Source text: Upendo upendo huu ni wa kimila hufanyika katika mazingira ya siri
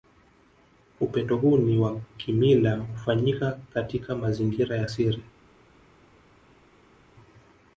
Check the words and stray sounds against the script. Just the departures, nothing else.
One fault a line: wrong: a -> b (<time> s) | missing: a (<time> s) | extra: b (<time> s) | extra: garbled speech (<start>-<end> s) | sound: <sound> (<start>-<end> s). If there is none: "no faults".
missing: upendo (1.4 s)